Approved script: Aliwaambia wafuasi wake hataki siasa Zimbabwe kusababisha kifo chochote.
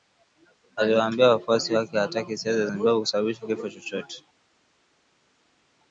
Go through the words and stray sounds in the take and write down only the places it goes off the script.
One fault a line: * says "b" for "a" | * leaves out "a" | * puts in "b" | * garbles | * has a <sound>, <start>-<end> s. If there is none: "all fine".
all fine